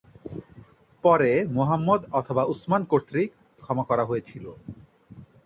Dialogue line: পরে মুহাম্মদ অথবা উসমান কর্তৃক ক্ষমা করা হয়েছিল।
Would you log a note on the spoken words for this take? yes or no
no